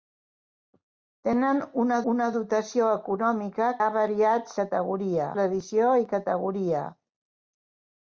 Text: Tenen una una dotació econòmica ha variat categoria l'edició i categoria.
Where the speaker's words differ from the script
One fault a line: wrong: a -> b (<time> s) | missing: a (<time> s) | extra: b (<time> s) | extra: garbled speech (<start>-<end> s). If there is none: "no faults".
no faults